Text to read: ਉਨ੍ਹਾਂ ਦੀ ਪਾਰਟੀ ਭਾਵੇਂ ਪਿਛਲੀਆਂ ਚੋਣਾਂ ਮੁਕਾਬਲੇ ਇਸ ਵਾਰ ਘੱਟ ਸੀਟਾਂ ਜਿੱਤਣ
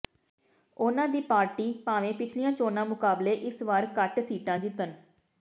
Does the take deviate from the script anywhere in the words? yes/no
no